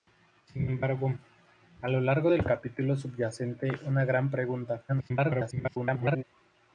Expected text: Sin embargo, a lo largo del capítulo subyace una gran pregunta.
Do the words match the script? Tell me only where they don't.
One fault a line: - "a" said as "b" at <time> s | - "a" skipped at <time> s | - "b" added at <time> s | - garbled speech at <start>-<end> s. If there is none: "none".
- garbled speech at 4.9-6.2 s